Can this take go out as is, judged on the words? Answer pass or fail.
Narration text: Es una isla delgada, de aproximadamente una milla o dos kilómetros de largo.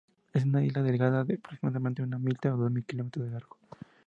pass